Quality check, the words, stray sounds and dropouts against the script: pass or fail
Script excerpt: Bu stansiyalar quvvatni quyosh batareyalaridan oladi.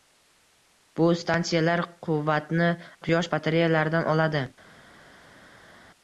pass